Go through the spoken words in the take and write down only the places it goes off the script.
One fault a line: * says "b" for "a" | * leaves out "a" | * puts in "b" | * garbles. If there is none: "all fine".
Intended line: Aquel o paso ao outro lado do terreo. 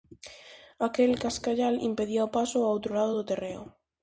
* puts in "cascallal impedía"